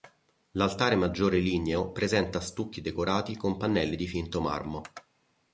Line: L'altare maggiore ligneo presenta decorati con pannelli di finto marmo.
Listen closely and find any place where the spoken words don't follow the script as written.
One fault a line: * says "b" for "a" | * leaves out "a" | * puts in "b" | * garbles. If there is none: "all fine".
* puts in "stucchi"